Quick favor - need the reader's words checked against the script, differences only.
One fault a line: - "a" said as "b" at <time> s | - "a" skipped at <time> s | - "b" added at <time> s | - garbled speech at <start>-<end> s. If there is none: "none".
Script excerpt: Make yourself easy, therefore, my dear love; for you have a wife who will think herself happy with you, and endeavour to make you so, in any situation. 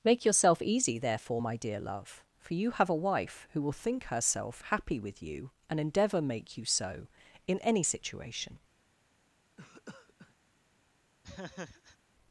- "to" skipped at 6.2 s